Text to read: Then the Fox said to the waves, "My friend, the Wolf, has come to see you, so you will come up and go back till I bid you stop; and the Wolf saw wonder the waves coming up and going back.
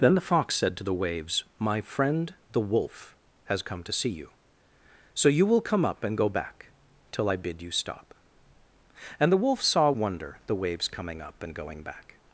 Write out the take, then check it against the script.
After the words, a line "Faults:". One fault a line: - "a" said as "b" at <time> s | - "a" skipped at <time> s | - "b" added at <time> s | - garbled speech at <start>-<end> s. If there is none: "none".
Then the Fox said to the waves, "My friend, the Wolf, has come to see you, so you will come up and go back till I bid you stop; and the Wolf saw wonder the waves coming up and going back.
Faults:
none